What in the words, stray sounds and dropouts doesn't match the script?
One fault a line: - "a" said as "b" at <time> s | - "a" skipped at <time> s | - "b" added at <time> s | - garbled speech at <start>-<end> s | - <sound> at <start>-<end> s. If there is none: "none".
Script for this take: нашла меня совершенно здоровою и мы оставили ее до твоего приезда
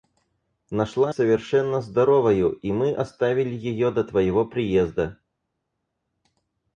- "меня" skipped at 1.1 s